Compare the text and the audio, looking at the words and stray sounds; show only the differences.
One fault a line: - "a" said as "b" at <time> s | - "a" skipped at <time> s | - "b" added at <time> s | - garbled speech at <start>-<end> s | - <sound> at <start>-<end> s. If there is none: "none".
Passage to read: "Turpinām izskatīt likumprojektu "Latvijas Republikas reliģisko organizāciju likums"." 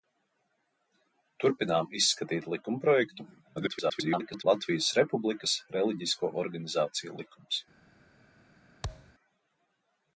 - garbled speech at 3.6-4.4 s
- thud at 8.8-9.1 s